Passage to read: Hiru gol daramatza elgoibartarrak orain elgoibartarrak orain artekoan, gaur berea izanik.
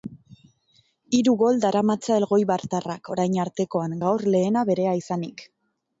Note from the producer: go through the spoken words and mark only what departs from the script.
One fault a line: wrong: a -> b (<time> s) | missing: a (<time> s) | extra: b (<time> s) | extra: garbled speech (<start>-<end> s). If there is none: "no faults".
missing: elgoibartarrak orain (3.4 s)
extra: lehena (4.4 s)